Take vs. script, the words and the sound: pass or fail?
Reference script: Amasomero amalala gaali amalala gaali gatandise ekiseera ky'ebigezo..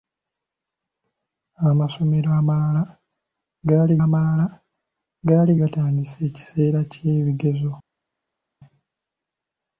pass